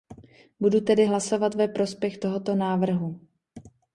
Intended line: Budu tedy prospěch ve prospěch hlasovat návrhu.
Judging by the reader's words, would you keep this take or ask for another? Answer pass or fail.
fail